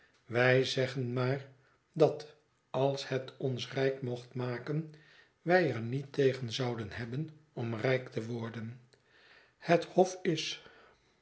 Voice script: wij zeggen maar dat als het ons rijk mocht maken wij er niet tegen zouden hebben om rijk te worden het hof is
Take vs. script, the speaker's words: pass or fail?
pass